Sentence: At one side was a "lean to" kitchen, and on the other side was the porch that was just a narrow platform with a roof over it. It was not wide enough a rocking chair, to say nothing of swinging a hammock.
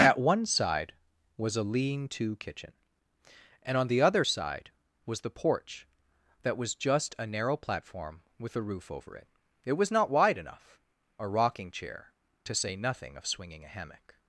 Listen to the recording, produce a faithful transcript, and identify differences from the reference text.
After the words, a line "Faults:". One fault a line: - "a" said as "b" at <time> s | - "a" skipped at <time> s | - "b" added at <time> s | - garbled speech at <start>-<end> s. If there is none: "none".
At one side was a "lean to" kitchen, and on the other side was the porch that was just a narrow platform with a roof over it. It was not wide enough a rocking chair, to say nothing of swinging a hammock.
Faults:
none